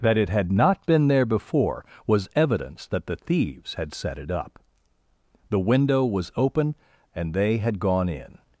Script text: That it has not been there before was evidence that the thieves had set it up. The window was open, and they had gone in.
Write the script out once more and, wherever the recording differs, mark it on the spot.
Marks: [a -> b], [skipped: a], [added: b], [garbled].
That it [has -> had] not been there before was evidence that the thieves had set it up. The window was open, and they had gone in.